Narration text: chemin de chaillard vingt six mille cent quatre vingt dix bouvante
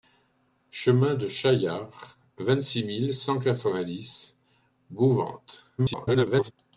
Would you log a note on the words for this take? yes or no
yes